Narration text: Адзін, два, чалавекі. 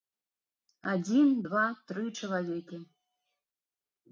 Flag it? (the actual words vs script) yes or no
yes